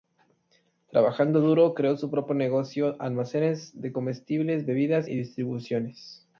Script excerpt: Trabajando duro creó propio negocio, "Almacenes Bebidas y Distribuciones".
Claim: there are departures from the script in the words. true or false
true